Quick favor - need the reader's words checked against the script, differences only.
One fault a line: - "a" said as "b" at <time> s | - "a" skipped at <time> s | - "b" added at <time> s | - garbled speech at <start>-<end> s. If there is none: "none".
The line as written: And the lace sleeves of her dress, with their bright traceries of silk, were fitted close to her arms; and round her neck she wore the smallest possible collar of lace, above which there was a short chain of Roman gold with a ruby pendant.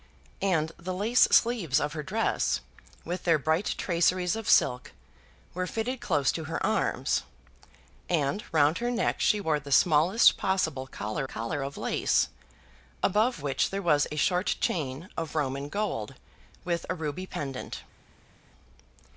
- "collar" added at 11.2 s